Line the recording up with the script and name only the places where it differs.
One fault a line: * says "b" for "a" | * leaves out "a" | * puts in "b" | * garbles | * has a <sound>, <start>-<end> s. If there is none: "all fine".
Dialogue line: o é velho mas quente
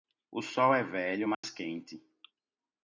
* puts in "sol"
* has a dropout, 1.3-1.4 s